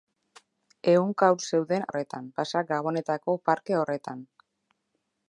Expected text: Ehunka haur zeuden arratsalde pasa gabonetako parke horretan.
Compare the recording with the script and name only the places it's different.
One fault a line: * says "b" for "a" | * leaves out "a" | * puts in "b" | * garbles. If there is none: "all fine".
* says "horretan" for "arratsalde"